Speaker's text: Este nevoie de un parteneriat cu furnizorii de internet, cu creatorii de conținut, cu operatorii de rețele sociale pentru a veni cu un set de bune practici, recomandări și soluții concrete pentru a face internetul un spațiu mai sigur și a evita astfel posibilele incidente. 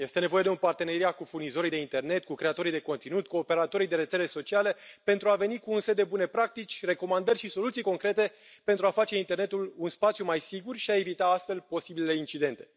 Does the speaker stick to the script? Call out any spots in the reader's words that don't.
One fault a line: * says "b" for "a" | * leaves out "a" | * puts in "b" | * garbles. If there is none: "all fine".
all fine